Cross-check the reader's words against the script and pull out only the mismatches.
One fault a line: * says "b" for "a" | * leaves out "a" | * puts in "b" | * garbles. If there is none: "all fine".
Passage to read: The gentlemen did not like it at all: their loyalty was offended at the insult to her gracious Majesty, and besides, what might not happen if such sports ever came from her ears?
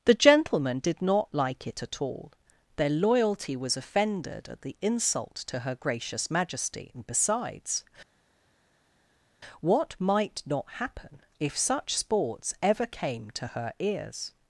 * says "to" for "from"